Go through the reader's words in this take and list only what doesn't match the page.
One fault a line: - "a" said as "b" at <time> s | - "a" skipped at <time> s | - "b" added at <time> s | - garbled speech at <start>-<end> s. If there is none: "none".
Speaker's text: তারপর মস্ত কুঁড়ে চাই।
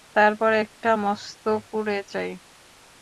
- "একটা" added at 0.6 s